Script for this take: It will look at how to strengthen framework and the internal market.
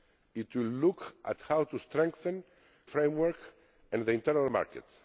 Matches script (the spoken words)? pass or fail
pass